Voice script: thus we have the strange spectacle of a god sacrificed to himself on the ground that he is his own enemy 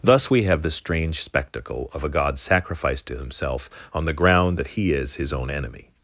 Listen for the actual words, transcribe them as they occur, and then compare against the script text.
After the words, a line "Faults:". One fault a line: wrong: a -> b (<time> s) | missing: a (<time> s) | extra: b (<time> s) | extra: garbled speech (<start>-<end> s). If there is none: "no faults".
thus we have the strange spectacle of a god sacrificed to himself on the ground that he is his own enemy
Faults:
no faults